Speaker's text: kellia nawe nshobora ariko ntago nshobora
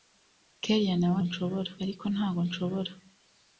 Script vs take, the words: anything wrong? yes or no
no